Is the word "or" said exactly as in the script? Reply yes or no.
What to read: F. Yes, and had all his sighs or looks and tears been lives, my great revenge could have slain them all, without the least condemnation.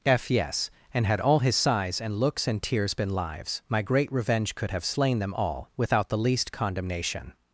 no